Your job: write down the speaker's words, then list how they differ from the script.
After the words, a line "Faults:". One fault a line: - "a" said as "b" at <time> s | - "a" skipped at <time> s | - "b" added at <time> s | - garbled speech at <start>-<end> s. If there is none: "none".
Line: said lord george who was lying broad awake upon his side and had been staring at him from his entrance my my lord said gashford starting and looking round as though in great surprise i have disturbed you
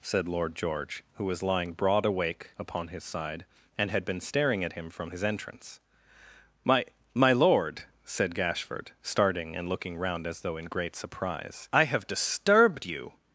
said lord george who was lying broad awake upon his side and had been staring at him from his entrance my my lord said gashford starting and looking round as though in great surprise i have disturbed you
Faults:
none